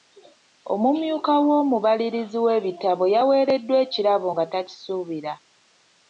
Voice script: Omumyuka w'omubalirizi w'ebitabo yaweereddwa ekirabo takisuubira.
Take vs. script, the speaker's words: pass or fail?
fail